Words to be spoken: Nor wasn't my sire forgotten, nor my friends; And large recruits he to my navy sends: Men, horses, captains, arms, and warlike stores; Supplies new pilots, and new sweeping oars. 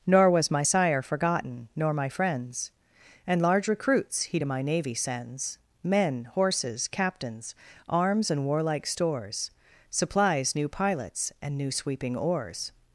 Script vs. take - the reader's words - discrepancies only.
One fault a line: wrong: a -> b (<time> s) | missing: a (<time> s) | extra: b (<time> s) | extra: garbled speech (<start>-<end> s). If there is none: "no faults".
wrong: wasn't -> was (0.3 s)